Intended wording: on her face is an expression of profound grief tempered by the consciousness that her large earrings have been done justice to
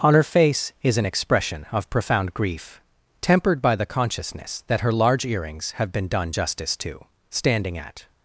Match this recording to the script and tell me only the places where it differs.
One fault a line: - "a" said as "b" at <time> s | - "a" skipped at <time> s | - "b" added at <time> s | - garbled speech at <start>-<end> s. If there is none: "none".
- "standing at" added at 7.3 s